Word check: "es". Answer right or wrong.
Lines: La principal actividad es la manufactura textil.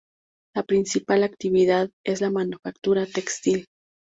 right